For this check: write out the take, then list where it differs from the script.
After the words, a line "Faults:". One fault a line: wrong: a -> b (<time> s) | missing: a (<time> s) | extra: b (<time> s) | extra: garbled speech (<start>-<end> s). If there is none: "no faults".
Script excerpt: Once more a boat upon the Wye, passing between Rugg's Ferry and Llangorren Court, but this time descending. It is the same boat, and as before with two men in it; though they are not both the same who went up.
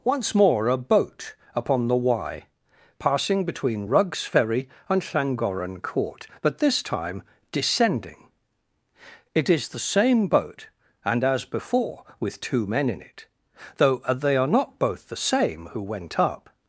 Once more a boat upon the Wye, passing between Rugg's Ferry and Llangorren Court, but this time descending. It is the same boat, and as before with two men in it; though they are not both the same who went up.
Faults:
no faults